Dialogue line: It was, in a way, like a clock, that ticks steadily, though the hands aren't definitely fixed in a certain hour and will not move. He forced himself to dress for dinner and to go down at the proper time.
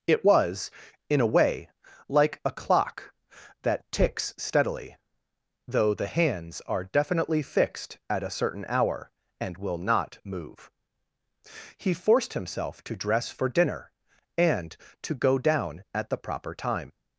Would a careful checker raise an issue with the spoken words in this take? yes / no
yes